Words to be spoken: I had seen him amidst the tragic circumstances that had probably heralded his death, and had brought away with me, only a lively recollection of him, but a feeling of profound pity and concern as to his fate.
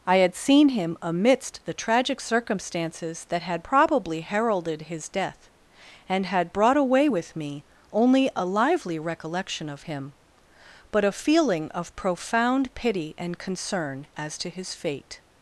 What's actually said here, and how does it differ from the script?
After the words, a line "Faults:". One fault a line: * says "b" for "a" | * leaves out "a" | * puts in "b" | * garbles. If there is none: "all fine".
I had seen him amidst the tragic circumstances that had probably heralded his death, and had brought away with me, only a lively recollection of him, but a feeling of profound pity and concern as to his fate.
Faults:
all fine